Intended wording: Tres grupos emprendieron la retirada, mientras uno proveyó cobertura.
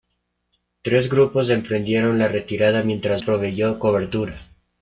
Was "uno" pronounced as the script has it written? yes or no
no